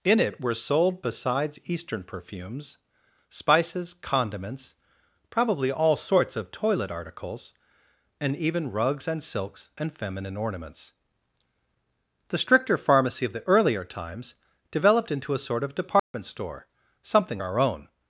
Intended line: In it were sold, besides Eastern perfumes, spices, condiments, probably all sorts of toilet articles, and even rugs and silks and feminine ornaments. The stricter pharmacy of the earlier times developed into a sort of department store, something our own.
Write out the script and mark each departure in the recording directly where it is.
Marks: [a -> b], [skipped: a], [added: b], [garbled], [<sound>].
In it were sold, besides Eastern perfumes, spices, condiments, probably all sorts of toilet articles, and even rugs and silks and feminine ornaments. The stricter pharmacy of the earlier times developed into a sort of department [dropout] store, something our own.